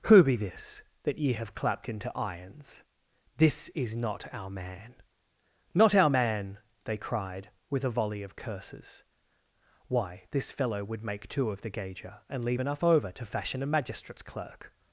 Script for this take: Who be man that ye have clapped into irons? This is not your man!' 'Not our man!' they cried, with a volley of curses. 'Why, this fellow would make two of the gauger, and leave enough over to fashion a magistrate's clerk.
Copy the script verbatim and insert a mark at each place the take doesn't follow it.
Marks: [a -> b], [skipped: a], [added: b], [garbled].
Who be [man -> this] that ye have clapped into irons? This is not [your -> our] man!' 'Not our man!' they cried, with a volley of curses. 'Why, this fellow would make two of the gauger, and leave enough over to fashion a magistrate's clerk.